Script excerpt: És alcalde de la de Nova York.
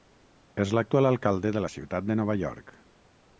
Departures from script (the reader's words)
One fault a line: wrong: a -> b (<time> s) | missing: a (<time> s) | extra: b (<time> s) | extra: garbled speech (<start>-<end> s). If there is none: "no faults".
extra: l'actual (0.8 s)
extra: ciutat (1.7 s)